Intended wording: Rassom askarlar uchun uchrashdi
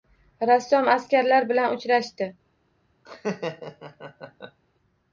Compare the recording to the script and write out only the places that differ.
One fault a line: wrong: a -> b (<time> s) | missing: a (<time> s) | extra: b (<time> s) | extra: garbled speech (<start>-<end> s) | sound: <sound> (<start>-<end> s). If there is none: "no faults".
wrong: uchun -> bilan (1.5 s)
sound: laugh (3.1-4.6 s)